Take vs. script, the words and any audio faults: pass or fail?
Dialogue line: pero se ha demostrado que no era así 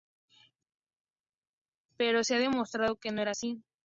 pass